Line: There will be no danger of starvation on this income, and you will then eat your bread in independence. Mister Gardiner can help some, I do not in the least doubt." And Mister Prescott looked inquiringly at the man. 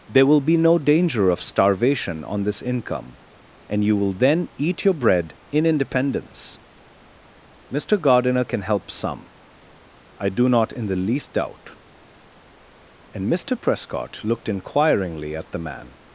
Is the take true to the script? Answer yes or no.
yes